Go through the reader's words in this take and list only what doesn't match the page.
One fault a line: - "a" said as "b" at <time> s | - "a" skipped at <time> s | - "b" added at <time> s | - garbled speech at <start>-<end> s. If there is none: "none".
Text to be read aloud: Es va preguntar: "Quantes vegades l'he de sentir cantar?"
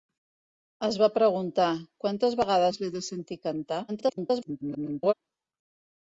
- garbled speech at 3.9-5.1 s